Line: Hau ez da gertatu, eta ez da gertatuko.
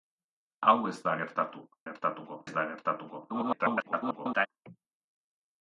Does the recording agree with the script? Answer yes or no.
no